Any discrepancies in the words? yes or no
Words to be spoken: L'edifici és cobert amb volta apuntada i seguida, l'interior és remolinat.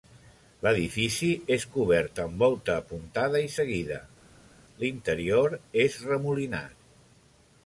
no